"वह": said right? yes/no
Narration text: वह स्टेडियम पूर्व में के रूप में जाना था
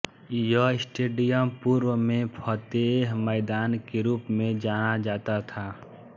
no